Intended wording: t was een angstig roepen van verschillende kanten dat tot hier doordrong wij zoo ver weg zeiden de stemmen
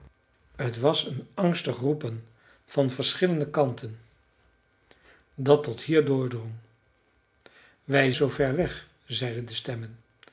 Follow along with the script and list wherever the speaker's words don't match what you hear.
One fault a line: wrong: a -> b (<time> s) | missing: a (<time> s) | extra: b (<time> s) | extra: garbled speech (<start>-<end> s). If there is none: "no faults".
no faults